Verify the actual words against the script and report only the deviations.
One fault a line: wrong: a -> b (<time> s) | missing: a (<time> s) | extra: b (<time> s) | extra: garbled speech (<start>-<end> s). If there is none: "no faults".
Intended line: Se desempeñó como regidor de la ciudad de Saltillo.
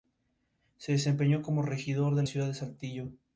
missing: la (2.2 s)